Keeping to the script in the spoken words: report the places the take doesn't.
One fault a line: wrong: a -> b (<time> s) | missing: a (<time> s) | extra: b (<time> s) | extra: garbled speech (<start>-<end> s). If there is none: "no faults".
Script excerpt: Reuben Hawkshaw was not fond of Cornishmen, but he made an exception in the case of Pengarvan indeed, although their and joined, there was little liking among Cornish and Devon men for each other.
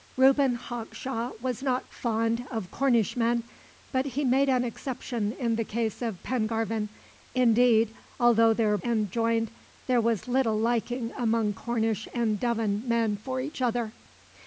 no faults